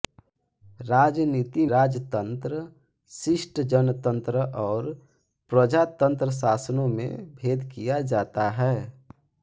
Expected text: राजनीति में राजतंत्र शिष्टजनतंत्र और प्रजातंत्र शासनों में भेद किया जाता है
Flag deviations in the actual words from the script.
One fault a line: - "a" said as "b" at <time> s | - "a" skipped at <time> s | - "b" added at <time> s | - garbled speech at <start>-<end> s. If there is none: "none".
- "में" skipped at 1.6 s